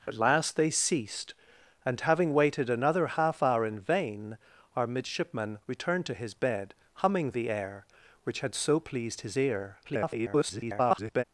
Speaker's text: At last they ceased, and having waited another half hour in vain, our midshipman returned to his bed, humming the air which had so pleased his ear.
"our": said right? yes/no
yes